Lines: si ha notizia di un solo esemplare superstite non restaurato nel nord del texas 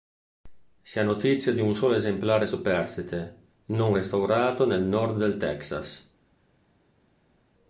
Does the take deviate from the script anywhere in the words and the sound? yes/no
no